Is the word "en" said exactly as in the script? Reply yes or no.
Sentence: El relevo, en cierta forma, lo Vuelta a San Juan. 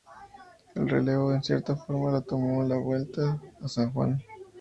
yes